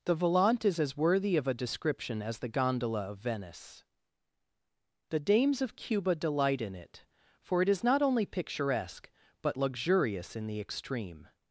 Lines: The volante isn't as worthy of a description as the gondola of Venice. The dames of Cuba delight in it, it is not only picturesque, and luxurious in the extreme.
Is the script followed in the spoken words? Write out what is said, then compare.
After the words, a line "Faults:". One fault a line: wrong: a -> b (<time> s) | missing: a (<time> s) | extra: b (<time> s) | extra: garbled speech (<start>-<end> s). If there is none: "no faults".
The volante is as worthy of a description as the gondola of Venice. The dames of Cuba delight in it, for it is not only picturesque, but luxurious in the extreme.
Faults:
wrong: isn't -> is (0.7 s)
extra: for (7.4 s)
wrong: and -> but (9.4 s)